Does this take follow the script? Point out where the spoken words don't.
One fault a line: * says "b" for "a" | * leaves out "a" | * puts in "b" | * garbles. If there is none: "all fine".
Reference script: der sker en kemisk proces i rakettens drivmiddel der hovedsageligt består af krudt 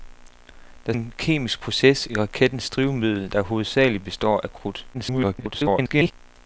* leaves out "sker"
* garbles